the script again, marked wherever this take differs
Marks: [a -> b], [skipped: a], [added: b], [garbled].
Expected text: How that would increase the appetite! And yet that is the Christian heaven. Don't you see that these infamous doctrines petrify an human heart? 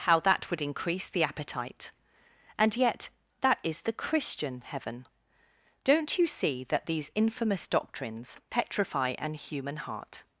How that would increase the appetite! And yet that is the Christian heaven. Don't you see that these infamous doctrines petrify an human heart?